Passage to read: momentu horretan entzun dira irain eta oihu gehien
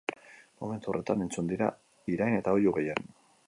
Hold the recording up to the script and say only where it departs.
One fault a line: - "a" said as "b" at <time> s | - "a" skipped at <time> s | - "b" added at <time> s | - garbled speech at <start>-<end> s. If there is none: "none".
none